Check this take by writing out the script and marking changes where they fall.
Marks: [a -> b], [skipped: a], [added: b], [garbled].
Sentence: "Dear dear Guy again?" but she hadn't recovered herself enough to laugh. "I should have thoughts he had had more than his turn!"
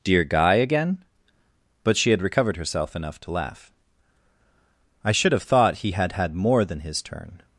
"Dear [skipped: dear] Guy again?" but she [hadn't -> had] recovered herself enough to laugh. "I should have [thoughts -> thought] he had had more than his turn!"